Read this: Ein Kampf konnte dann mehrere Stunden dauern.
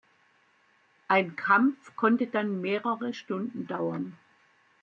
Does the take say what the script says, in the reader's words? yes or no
yes